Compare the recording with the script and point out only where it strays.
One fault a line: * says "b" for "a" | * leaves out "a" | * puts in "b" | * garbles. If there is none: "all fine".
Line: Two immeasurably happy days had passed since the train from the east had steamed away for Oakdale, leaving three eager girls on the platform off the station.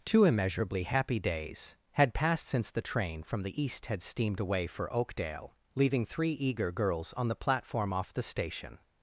all fine